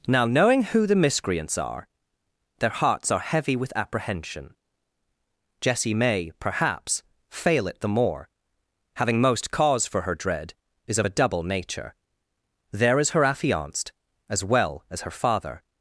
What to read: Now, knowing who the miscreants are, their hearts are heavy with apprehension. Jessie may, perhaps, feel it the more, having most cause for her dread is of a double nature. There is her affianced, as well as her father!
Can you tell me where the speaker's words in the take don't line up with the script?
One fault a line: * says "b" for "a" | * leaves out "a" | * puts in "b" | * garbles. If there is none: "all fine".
* says "fail" for "feel"